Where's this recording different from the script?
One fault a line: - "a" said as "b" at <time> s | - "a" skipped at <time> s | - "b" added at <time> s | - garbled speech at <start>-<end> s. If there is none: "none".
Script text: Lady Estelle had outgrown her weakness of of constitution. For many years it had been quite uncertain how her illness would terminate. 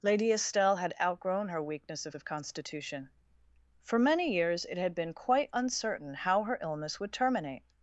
none